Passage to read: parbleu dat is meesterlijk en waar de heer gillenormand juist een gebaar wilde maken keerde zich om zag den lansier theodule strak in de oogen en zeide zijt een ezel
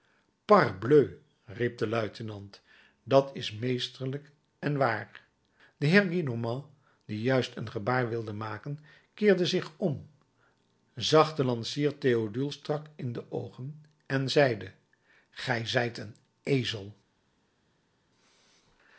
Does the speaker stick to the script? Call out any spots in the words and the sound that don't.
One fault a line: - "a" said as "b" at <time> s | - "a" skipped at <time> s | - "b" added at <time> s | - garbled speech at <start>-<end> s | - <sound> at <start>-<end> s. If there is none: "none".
- "riep de luitenant" added at 1.4 s
- "die" added at 7.0 s
- "gij" added at 15.3 s